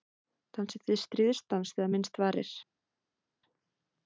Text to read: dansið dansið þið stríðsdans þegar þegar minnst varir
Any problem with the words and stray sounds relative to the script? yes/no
yes